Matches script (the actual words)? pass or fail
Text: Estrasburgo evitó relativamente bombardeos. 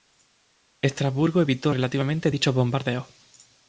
fail